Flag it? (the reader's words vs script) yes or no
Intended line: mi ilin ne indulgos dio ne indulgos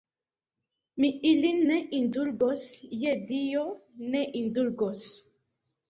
yes